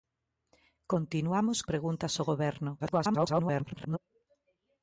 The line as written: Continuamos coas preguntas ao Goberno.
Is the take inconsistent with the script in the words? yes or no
yes